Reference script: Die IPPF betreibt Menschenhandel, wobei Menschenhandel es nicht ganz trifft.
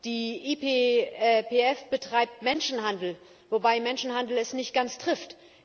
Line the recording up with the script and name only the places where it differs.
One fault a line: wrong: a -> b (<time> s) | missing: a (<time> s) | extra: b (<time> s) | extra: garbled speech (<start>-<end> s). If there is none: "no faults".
no faults